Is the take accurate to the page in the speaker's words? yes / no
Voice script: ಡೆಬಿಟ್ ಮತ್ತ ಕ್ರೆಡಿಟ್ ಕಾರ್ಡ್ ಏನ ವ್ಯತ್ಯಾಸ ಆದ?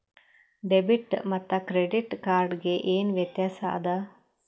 no